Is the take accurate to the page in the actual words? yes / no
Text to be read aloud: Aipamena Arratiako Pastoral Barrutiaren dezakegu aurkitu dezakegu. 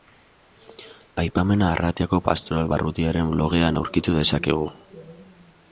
no